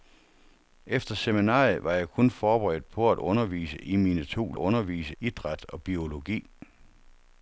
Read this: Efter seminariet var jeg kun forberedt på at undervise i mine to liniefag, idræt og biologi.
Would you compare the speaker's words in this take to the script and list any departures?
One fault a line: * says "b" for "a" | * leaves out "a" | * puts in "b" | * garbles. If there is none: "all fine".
* says "undervise" for "liniefag"